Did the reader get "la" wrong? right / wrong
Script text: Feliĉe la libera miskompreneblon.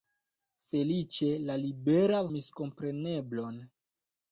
right